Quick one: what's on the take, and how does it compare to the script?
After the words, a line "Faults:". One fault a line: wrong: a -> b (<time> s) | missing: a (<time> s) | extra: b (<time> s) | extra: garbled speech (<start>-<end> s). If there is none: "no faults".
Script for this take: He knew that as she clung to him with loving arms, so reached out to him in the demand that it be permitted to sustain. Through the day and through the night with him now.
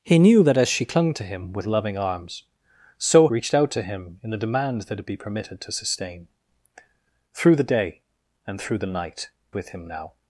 He knew that as she clung to him with loving arms, so reached out to him in the demand that it be permitted to sustain. Through the day and through the night with him now.
Faults:
no faults